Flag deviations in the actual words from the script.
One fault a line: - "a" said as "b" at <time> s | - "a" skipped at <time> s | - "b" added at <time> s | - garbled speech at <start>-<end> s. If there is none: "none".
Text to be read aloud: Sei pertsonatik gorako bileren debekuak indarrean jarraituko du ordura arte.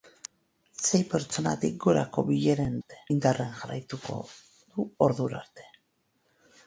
- "debekuak" said as "arte" at 2.8 s